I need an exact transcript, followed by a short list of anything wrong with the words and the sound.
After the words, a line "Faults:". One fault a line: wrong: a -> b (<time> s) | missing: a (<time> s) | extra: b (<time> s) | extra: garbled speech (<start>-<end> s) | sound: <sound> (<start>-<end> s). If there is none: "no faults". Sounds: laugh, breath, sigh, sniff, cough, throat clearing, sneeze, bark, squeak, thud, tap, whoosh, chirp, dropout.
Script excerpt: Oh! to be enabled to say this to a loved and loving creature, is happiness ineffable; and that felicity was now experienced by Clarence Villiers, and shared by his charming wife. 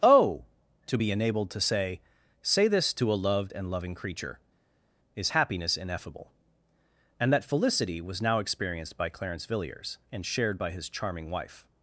Oh! to be enabled to say say this to a loved and loving creature, is happiness ineffable; and that felicity was now experienced by Clarence Villiers, and shared by his charming wife.
Faults:
extra: say (2.4 s)